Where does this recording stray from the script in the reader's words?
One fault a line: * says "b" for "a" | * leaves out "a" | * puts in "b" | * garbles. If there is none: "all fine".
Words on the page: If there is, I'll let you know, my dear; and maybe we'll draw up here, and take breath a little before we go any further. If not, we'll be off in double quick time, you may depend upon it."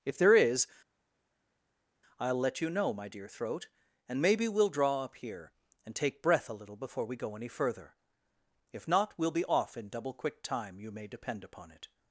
* puts in "throat"